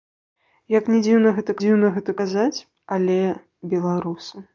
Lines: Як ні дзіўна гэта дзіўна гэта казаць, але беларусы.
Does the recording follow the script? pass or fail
pass